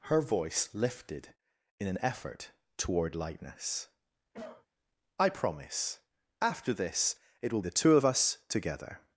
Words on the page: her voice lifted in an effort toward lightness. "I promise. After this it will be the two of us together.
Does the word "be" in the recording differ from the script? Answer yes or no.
yes